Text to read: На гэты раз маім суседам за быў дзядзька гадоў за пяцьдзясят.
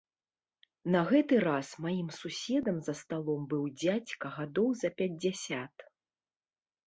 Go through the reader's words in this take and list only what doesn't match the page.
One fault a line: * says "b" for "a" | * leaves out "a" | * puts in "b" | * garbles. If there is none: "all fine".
* puts in "сталом"